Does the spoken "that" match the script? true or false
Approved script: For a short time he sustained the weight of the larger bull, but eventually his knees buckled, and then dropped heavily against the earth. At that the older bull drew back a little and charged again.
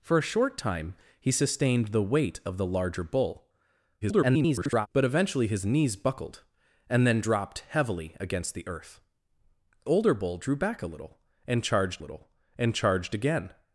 false